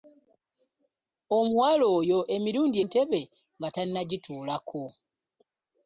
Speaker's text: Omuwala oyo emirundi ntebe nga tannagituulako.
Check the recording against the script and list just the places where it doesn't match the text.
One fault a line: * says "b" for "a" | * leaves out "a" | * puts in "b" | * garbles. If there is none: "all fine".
all fine